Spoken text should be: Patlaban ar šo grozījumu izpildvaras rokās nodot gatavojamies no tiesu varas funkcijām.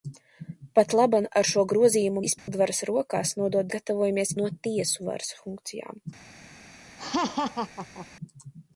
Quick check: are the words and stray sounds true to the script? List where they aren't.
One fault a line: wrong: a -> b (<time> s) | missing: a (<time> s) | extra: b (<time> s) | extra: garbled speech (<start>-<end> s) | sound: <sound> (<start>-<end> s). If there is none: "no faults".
sound: dropout (2.4-2.5 s)
sound: laugh (7.0-8.1 s)